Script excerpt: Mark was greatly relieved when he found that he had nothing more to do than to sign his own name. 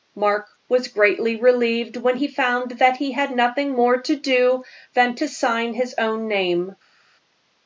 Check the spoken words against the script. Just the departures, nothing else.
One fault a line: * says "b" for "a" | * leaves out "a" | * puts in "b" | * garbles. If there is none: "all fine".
all fine